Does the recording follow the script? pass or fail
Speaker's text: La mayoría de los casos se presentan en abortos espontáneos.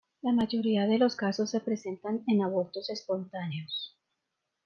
pass